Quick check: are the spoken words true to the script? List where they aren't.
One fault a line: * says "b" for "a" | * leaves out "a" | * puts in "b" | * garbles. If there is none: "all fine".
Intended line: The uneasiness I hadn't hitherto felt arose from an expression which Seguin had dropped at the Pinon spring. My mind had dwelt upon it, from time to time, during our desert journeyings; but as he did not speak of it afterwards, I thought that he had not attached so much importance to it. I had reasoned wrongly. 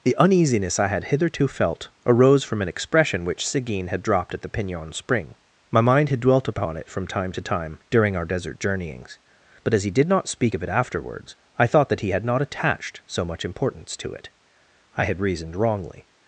* says "had" for "hadn't"